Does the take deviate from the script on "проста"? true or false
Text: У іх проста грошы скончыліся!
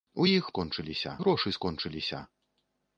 true